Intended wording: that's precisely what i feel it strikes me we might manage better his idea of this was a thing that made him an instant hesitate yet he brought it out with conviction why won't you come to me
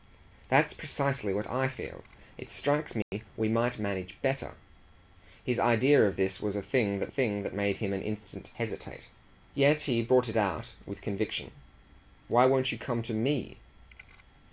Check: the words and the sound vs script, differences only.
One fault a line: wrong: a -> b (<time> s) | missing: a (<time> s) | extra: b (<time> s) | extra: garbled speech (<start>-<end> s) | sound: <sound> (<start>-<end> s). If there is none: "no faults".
sound: dropout (3.0-3.1 s)
extra: thing that (7.1 s)